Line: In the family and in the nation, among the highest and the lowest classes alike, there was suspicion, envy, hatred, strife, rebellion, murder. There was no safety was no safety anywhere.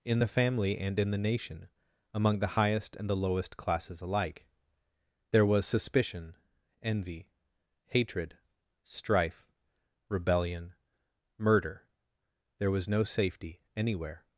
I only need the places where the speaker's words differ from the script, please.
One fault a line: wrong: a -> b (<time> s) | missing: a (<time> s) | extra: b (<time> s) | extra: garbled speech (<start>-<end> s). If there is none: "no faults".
missing: was no safety (13.6 s)